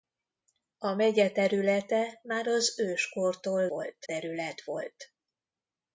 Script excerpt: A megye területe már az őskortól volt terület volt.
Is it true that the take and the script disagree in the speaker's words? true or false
false